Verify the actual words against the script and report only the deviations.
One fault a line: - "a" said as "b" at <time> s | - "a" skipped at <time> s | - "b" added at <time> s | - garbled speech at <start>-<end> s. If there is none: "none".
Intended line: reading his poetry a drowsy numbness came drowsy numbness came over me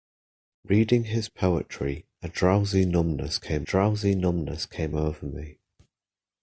none